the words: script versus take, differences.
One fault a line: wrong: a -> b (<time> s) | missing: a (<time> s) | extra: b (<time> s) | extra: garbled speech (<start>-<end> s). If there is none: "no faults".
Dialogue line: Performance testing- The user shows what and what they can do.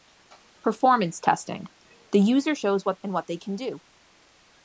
no faults